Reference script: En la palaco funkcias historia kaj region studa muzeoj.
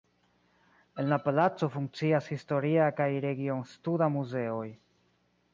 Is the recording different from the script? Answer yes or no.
no